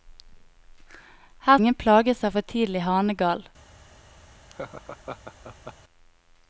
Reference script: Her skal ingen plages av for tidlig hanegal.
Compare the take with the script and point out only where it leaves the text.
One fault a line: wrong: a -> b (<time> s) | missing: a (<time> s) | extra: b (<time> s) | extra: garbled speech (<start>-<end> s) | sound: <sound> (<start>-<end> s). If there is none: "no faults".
missing: skal (1.6 s)
sound: laugh (4.5-5.7 s)